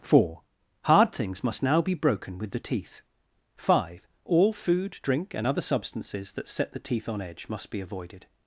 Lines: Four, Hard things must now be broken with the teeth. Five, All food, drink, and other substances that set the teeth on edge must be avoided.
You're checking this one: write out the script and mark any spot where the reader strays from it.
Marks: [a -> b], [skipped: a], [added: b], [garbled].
Four, Hard things must now be broken with the teeth. Five, All food, drink, and other substances that set the teeth on edge must be avoided.